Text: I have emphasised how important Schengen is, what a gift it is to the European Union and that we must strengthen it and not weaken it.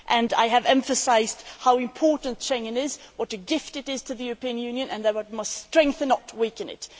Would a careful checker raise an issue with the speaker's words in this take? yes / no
yes